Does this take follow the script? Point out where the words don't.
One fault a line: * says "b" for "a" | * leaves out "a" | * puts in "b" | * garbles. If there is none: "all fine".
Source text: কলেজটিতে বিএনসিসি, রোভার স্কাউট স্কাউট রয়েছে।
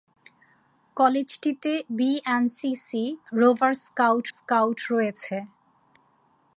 all fine